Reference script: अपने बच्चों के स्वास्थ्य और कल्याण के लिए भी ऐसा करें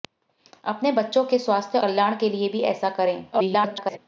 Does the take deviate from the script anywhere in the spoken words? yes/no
yes